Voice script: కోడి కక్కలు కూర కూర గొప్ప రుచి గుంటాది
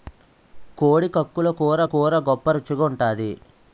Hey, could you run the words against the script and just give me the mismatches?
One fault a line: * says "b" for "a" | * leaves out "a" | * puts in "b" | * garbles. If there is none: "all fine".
all fine